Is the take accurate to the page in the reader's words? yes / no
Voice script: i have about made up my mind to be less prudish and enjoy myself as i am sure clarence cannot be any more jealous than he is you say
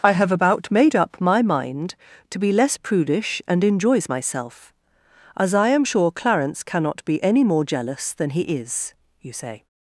no